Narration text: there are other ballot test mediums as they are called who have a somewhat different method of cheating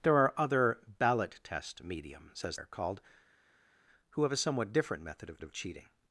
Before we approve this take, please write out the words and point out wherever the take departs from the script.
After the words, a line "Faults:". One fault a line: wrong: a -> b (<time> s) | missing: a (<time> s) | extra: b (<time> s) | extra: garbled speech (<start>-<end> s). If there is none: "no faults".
there are other ballot test mediums as are called who have a somewhat different method of of cheating
Faults:
missing: they (2.6 s)
extra: of (5.4 s)